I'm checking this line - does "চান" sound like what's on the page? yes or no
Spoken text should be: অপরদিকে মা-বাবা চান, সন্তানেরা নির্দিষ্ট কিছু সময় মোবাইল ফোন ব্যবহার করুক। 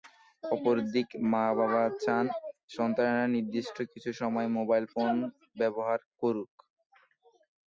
yes